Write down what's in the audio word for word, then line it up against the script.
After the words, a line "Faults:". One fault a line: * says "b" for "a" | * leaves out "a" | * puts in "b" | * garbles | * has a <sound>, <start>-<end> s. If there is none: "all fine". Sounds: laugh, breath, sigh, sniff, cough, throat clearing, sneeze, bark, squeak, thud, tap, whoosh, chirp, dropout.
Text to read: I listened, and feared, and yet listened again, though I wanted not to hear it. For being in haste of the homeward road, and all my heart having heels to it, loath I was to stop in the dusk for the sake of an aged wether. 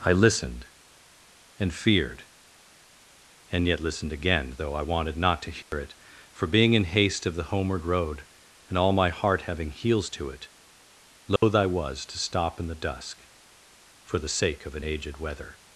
I listened, and feared, and yet listened again, though I wanted not to hear it. For being in haste of the homeward road, and all my heart having heels to it, loath I was to stop in the dusk for the sake of an aged wether.
Faults:
* has a dropout, 5.6-5.7 s
* has a dropout, 11.4-11.4 s